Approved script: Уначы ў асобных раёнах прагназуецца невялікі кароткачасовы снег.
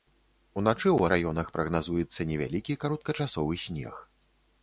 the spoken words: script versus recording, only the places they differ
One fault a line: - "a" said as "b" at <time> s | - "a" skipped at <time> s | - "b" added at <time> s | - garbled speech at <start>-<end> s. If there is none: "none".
- "асобных" skipped at 1.0 s